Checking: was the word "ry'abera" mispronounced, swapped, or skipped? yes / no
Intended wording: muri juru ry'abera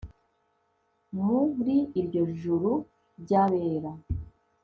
no